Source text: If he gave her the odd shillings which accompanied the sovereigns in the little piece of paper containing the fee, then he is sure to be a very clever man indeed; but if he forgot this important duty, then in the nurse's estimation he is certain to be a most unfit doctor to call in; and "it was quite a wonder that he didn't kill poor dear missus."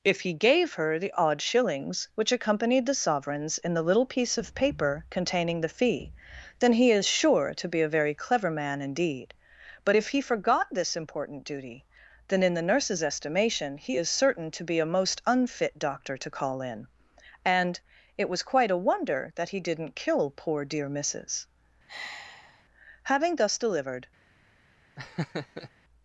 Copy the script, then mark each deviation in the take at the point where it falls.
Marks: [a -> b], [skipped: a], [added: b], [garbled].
If he gave her the odd shillings which accompanied the sovereigns in the little piece of paper containing the fee, then he is sure to be a very clever man indeed; but if he forgot this important duty, then in the nurse's estimation he is certain to be a most unfit doctor to call in; and "it was quite a wonder that he didn't kill poor dear missus." [added: Having thus delivered]